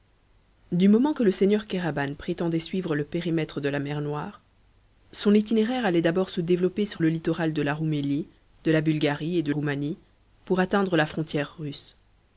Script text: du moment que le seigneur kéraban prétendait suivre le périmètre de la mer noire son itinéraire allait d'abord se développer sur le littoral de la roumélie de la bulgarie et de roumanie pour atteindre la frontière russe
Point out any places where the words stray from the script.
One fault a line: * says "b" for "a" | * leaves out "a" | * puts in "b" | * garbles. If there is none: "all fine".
all fine